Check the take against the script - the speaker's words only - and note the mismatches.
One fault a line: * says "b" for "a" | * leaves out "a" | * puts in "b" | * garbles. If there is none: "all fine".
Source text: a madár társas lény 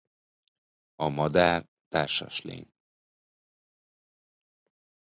all fine